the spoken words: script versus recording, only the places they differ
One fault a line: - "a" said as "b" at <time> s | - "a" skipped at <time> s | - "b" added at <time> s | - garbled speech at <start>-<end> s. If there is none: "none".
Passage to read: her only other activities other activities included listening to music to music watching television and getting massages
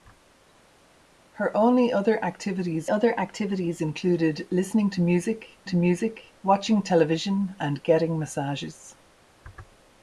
none